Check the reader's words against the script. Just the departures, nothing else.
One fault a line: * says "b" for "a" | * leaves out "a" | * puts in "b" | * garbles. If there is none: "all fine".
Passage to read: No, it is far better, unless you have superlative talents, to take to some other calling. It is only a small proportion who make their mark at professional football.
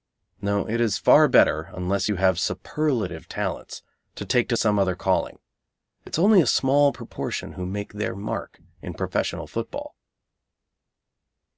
* says "in" for "at"